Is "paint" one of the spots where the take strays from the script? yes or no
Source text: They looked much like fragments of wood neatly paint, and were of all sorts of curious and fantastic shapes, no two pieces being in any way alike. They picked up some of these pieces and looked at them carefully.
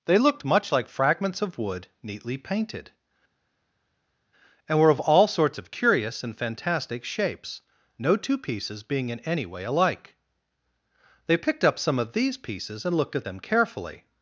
yes